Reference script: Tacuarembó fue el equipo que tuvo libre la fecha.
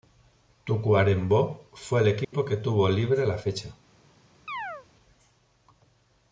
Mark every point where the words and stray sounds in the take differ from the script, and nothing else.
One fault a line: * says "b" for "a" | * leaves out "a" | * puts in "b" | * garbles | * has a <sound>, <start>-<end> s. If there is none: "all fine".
* has a dropout, 2.2-2.3 s
* has a chirp, 4.5-4.9 s